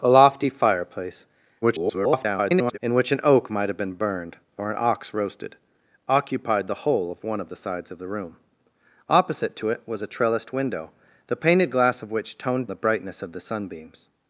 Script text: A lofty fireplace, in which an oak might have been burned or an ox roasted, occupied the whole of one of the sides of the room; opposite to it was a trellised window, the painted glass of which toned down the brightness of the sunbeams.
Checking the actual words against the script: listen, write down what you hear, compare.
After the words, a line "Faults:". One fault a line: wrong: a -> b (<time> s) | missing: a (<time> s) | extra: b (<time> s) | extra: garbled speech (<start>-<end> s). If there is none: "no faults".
A lofty fireplace, [garbled] in which an oak might have been burned or an ox roasted, occupied the whole of one of the sides of the room; opposite to it was a trellised window, the painted glass of which toned the brightness of the sunbeams.
Faults:
extra: garbled speech (1.6-2.8 s)
missing: down (12.7 s)